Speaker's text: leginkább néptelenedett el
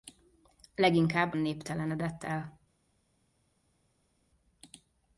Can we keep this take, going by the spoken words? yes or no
yes